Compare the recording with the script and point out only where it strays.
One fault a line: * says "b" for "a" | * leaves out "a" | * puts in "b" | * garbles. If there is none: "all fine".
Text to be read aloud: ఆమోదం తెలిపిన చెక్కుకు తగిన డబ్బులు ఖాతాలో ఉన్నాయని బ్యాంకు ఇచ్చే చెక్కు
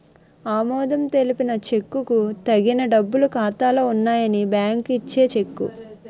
all fine